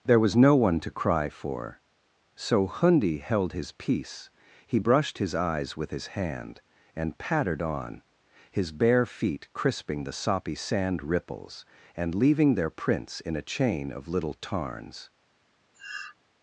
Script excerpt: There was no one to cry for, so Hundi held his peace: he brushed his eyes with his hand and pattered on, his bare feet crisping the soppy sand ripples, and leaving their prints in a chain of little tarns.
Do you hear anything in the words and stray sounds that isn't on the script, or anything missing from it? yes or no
yes